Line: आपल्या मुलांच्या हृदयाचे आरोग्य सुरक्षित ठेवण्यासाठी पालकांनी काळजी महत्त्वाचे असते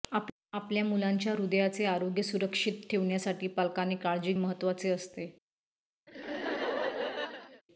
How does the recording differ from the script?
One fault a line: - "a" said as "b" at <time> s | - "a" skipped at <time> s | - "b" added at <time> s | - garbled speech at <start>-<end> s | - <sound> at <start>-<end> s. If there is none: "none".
- laugh at 6.1-7.6 s